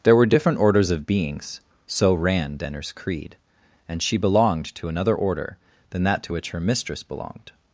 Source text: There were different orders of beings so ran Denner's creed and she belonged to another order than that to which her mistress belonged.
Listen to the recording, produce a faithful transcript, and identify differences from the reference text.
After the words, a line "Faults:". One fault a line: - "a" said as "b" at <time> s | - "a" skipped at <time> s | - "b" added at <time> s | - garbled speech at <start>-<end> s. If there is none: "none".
There were different orders of beings so ran Denner's creed and she belonged to another order than that to which her mistress belonged.
Faults:
none